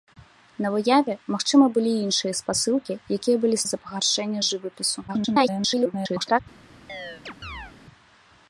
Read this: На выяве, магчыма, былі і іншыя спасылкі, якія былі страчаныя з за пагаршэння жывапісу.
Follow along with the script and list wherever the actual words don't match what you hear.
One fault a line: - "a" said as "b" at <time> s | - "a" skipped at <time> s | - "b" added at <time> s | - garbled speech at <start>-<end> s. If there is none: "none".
- "страчаныя" skipped at 3.6 s
- garbled speech at 5.1-6.4 s